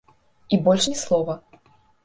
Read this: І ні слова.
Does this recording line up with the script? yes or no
no